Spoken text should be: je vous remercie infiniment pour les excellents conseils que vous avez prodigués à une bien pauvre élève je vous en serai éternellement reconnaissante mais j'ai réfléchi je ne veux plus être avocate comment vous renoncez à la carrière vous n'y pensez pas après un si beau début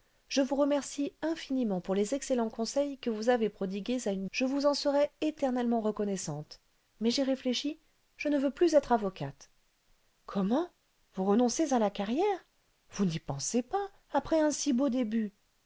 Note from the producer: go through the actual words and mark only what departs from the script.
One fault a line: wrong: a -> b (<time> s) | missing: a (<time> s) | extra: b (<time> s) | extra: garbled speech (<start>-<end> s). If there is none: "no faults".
missing: bien pauvre élève (4.2 s)